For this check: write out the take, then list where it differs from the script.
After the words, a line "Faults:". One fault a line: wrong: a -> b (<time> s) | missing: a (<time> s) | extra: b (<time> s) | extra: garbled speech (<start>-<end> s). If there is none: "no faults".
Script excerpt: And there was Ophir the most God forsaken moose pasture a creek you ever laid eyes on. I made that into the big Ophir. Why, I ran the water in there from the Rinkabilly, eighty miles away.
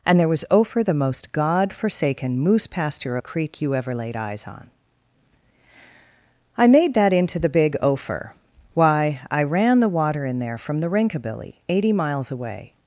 And there was Ophir the most God forsaken moose pasture a creek you ever laid eyes on. I made that into the big Ophir. Why, I ran the water in there from the Rinkabilly, eighty miles away.
Faults:
no faults